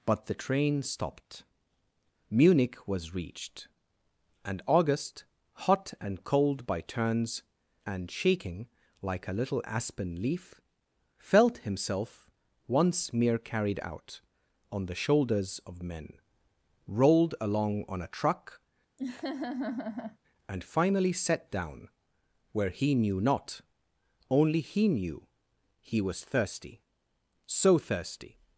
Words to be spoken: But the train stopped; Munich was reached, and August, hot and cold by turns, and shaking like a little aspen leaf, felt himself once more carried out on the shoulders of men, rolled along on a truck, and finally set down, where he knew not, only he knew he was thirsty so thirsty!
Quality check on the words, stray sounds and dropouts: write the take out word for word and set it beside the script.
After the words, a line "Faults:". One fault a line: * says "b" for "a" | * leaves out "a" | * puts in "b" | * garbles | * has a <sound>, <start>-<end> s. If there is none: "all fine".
But the train stopped; Munich was reached, and August, hot and cold by turns, and shaking like a little aspen leaf, felt himself once mere carried out on the shoulders of men, rolled along on a truck, and finally set down, where he knew not, only he knew he was thirsty so thirsty!
Faults:
* says "mere" for "more"
* has a laugh, 19.0-20.2 s